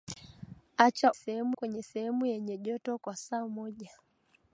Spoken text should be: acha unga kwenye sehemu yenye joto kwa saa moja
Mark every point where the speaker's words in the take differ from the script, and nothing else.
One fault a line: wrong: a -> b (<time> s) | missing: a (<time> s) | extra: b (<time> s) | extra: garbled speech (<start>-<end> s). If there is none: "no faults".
wrong: unga -> sehemu (1.1 s)